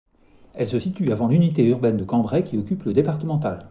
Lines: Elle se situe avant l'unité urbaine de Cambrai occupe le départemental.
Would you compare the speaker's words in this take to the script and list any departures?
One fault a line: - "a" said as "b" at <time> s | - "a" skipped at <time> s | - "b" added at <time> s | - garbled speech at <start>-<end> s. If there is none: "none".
- "qui" added at 2.4 s